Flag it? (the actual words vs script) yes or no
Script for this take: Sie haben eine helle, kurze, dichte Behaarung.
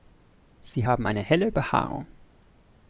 yes